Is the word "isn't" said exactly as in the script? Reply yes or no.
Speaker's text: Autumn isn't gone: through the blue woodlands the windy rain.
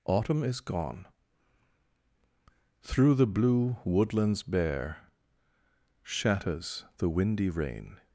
no